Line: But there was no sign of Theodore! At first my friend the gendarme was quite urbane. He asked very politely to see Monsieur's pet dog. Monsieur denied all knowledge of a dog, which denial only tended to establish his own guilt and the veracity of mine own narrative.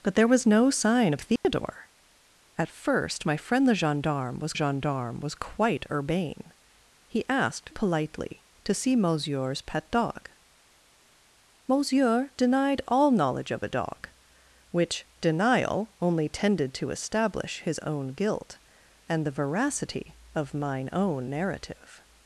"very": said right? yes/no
no